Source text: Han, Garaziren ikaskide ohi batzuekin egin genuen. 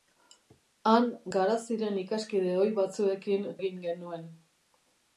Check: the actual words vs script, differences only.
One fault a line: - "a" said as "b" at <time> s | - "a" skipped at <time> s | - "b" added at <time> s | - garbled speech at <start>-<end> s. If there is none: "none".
none